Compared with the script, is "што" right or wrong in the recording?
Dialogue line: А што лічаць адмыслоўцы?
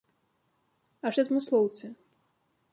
wrong